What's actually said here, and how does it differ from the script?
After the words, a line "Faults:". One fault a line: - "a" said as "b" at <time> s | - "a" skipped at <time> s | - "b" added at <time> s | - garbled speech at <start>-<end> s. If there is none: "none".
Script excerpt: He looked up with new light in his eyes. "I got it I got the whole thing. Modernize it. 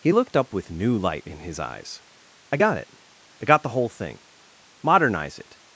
He looked up with new light in his eyes. "I got it I got the whole thing. Modernize it.
Faults:
none